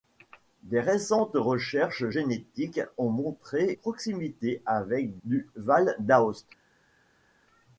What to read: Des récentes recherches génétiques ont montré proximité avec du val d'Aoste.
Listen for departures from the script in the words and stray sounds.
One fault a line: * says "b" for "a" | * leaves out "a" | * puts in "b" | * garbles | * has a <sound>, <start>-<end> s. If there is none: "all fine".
all fine